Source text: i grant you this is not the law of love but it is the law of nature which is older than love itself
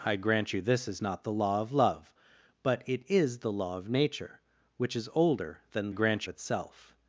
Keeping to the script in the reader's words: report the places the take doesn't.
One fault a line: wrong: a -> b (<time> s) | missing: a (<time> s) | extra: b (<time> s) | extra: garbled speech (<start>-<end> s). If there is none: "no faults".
wrong: love -> grant (5.9 s)